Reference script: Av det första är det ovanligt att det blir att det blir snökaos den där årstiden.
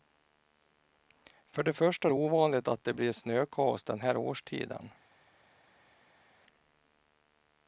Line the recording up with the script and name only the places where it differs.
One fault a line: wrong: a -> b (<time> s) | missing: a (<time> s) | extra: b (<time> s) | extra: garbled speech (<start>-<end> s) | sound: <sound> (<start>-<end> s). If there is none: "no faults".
wrong: Av -> För (1.4 s)
missing: att det blir (3.1 s)
wrong: där -> här (4.0 s)